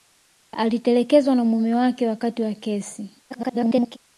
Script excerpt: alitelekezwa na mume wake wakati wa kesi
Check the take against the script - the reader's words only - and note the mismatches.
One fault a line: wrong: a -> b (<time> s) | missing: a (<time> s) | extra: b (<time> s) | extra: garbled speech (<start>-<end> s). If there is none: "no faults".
extra: garbled speech (3.3-4.0 s)